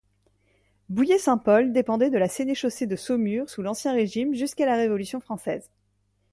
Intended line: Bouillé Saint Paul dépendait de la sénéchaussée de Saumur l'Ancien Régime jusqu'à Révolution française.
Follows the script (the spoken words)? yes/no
no